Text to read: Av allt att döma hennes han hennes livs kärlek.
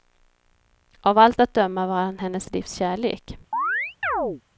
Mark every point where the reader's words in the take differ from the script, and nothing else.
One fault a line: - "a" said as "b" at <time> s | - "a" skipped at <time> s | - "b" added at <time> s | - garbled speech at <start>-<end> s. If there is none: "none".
- "hennes" said as "var" at 1.9 s